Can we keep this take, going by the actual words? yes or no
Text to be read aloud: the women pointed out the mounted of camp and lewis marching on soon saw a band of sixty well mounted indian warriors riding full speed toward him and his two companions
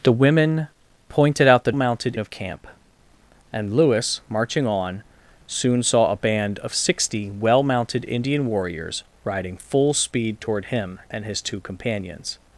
yes